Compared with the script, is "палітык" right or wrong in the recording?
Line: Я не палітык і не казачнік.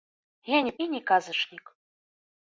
wrong